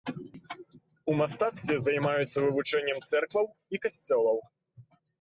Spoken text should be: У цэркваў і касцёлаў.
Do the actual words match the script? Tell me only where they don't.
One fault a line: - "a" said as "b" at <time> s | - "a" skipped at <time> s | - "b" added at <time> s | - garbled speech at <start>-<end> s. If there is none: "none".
- "мастацтве займаюцца вывучэннем" added at 1.2 s